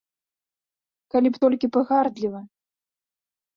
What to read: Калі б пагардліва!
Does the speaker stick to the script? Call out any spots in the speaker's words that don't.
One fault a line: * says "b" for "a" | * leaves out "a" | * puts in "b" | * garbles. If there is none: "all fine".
* puts in "толькі"